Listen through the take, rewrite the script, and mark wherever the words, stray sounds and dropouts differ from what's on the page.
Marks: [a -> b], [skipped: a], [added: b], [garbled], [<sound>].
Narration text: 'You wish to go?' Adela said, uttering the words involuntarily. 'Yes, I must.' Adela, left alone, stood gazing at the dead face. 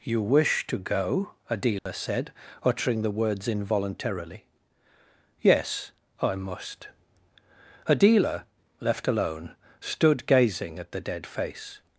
'You wish to go?' Adela [dropout] said, uttering the words involuntarily. 'Yes, I must.' Adela, left alone, stood gazing at the dead face.